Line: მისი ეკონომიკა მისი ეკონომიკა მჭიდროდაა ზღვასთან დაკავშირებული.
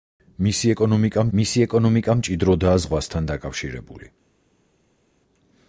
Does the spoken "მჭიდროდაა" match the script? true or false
true